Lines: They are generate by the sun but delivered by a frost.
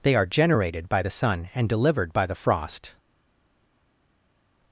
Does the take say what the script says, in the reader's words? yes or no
no